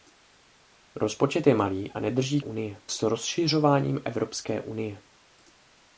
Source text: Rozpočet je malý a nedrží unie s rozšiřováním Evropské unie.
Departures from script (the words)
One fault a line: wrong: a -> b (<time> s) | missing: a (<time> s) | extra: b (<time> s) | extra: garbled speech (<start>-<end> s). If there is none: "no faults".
no faults